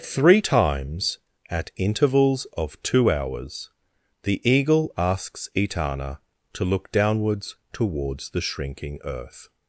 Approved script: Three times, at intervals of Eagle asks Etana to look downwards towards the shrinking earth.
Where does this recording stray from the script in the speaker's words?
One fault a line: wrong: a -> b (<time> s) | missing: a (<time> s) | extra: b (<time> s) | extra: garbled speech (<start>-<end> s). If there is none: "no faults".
extra: two hours the (2.8 s)